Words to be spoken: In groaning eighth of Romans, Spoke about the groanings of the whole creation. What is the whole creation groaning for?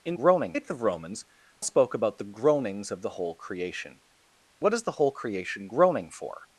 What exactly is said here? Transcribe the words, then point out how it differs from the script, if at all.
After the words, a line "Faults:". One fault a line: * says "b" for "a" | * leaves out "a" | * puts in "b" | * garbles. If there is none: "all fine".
In groaning eighth of Romans, Spoke about the groanings of the whole creation. What is the whole creation groaning for?
Faults:
all fine